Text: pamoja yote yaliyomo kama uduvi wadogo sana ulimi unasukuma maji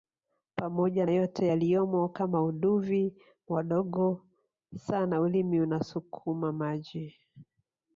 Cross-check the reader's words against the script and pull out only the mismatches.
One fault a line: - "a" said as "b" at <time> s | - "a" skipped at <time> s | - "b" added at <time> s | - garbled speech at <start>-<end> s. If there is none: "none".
none